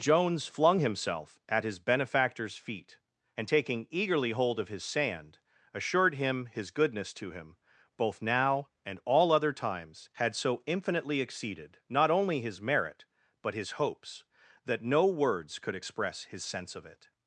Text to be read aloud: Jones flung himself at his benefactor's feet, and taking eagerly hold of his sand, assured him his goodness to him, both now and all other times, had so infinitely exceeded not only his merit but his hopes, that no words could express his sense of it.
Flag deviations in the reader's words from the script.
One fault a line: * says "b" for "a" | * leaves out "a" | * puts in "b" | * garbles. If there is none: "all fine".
all fine